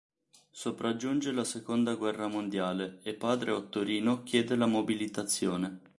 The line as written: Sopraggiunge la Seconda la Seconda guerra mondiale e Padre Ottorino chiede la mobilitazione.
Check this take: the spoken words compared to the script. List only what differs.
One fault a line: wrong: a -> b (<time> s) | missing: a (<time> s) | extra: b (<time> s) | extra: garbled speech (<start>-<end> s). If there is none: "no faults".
missing: la Seconda (1.9 s)